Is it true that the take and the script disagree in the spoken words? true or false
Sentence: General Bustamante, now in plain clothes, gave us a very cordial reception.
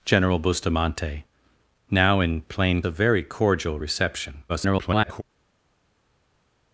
true